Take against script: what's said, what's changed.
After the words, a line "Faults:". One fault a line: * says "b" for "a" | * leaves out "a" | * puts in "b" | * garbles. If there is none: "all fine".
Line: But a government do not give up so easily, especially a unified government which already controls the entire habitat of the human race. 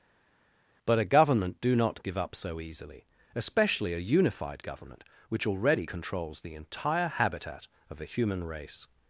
But a government do not give up so easily, especially a unified government which already controls the entire habitat of the human race.
Faults:
all fine